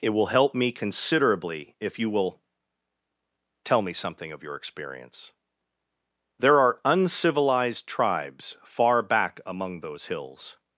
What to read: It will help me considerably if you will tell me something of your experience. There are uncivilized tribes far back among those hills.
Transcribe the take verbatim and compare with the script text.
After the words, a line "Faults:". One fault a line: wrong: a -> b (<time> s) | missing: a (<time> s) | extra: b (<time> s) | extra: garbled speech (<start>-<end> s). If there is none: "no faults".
It will help me considerably if you will tell me something of your experience. There are uncivilized tribes far back among those hills.
Faults:
no faults